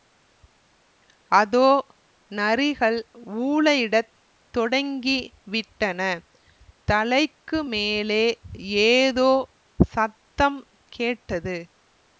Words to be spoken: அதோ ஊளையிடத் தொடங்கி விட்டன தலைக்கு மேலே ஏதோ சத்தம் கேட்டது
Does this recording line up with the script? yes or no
no